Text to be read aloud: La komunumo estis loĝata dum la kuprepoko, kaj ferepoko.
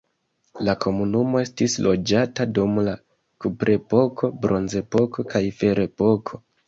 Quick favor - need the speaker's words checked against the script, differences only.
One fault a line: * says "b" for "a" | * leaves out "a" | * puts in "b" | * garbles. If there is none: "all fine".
* puts in "bronzepoko"